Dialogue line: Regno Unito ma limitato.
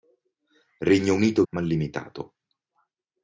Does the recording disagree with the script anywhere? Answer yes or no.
no